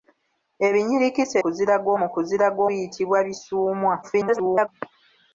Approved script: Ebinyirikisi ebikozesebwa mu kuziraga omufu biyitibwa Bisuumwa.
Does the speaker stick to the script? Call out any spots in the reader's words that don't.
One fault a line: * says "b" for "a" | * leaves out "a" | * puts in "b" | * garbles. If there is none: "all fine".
* says "kuziraga" for "ebikozesebwa"
* leaves out "omufu"
* garbles